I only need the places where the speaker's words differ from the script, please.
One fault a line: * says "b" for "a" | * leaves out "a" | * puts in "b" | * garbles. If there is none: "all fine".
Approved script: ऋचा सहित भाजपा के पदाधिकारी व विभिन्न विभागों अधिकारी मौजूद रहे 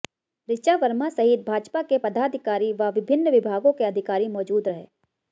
* puts in "वर्मा"
* puts in "के"